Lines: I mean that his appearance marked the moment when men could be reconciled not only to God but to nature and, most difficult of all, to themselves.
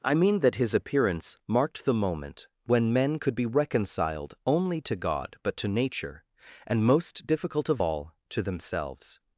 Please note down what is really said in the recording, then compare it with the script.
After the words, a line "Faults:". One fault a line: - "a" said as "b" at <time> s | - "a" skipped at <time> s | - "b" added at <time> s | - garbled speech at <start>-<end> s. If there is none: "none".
I mean that his appearance marked the moment when men could be reconciled only to God but to nature and, most difficult of all, to themselves.
Faults:
- "not" skipped at 4.3 s